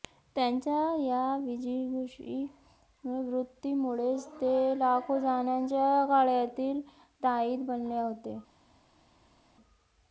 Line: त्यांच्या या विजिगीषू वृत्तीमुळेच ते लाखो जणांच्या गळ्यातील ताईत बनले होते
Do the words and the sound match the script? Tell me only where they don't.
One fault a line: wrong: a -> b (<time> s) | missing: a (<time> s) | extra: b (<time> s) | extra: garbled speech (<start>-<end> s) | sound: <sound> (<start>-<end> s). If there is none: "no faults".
no faults